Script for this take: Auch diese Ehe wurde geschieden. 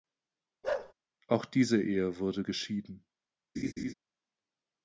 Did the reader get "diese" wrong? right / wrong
right